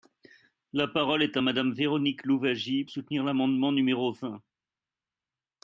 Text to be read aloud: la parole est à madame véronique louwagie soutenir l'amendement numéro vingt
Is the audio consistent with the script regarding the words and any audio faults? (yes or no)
yes